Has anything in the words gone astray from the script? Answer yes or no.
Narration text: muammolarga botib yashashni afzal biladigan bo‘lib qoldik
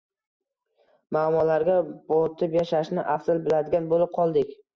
no